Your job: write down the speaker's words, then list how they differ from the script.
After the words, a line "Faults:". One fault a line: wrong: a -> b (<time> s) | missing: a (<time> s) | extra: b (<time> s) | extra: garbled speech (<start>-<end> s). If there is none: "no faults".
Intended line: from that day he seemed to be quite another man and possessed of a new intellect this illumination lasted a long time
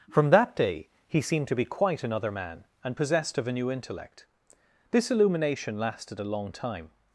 from that day he seemed to be quite another man and possessed of a new intellect this illumination lasted a long time
Faults:
no faults